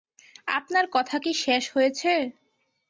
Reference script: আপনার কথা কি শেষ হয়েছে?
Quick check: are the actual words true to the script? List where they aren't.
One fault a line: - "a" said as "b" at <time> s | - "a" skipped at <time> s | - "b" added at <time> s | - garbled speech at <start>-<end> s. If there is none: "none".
none